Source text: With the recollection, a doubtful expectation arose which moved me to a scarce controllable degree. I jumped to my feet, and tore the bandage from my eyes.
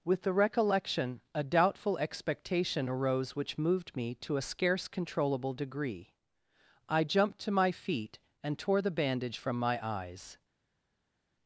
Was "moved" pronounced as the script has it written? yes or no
yes